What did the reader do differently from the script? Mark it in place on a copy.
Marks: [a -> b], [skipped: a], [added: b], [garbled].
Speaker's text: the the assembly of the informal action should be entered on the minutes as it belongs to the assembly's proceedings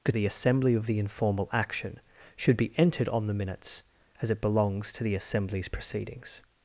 the the assembly of the informal action should be entered on the minutes as it belongs to the assembly's proceedings